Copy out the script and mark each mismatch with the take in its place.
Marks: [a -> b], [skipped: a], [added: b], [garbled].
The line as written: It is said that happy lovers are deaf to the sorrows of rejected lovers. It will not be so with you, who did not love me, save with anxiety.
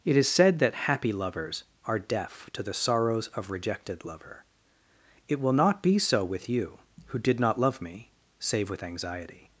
It is said that happy lovers are deaf to the sorrows of rejected [lovers. -> lover] It will not be so with you, who did not love me, save with anxiety.